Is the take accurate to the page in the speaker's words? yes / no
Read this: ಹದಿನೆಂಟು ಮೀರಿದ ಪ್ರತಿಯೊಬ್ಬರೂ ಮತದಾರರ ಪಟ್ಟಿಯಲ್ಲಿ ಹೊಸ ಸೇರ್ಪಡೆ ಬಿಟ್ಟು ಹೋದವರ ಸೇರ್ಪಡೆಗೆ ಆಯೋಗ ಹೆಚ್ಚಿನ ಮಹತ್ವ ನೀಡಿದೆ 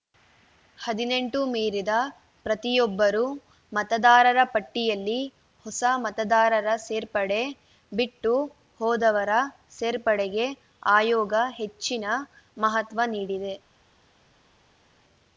no